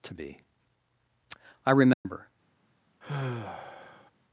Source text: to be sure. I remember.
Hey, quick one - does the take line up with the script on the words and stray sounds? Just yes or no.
no